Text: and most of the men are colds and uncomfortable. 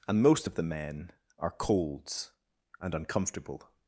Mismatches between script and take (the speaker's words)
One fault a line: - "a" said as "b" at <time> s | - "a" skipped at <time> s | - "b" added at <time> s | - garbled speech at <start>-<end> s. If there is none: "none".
none